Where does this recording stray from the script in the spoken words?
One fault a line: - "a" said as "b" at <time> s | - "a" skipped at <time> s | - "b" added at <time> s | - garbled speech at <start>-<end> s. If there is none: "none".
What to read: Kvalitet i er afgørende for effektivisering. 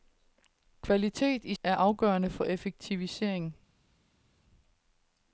none